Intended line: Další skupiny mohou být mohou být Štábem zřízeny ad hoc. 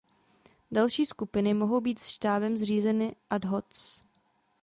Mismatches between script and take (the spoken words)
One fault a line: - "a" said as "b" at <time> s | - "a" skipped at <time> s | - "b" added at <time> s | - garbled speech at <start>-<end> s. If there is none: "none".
- "mohou být" skipped at 2.0 s